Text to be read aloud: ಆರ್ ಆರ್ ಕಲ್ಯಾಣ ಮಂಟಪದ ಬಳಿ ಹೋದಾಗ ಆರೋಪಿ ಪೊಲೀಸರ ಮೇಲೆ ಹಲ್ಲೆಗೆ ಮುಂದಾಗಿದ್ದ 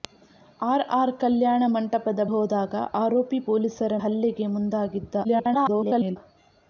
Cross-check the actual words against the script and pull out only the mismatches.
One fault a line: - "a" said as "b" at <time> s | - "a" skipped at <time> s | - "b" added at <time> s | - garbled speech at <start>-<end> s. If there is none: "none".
- "ಬಳಿ" skipped at 2.2 s
- "ಮೇಲೆ" skipped at 3.9 s
- garbled speech at 5.2-6.2 s